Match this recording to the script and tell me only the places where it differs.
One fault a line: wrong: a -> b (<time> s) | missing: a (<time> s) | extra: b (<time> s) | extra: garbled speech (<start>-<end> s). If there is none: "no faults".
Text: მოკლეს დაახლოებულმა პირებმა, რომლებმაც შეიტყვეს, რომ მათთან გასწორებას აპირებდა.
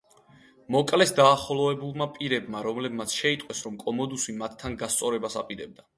extra: კომოდუსი (3.8 s)